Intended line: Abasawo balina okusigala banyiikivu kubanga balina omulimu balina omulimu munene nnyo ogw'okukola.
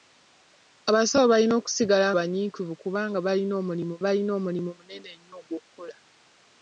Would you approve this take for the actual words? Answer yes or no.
yes